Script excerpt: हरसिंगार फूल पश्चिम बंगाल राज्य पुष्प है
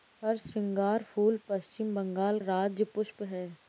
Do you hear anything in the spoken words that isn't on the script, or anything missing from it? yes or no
no